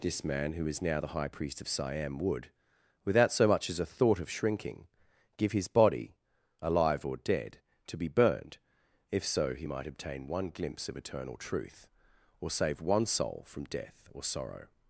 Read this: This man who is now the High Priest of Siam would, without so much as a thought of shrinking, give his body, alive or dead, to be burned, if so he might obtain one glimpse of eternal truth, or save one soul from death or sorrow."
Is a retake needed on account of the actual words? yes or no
no